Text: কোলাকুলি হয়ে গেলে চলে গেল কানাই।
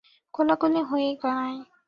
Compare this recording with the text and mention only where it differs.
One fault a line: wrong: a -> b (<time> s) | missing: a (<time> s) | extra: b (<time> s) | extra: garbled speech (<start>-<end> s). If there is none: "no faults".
missing: গেলে চলে গেল (1.1 s)